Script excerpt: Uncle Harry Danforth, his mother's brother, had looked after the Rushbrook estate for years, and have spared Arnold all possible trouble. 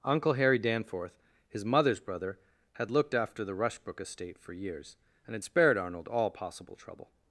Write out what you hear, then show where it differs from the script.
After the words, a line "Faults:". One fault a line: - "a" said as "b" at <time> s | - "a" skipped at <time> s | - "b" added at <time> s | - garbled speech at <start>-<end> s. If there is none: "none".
Uncle Harry Danforth, his mother's brother, had looked after the Rushbrook estate for years, and had spared Arnold all possible trouble.
Faults:
- "have" said as "had" at 5.3 s